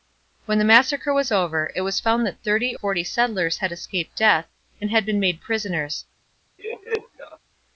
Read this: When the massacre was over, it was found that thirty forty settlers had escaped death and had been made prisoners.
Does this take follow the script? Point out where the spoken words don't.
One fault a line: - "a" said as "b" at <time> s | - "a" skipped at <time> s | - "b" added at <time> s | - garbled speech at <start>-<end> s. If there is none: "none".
none